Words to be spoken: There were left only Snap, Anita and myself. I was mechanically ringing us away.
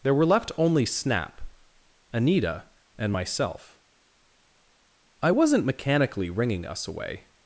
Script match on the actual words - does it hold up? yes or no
no